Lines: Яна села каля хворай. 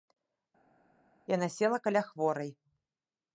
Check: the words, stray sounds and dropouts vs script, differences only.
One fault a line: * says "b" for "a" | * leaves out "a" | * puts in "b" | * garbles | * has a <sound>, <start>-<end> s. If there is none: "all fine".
all fine